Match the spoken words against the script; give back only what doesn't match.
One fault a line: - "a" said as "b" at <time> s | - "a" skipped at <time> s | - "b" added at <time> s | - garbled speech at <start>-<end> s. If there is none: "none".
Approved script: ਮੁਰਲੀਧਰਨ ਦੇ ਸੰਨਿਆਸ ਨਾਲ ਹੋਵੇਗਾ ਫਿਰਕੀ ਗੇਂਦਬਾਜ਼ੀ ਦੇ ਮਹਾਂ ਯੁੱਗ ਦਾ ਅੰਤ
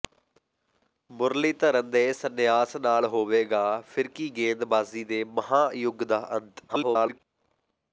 - garbled speech at 6.7-7.2 s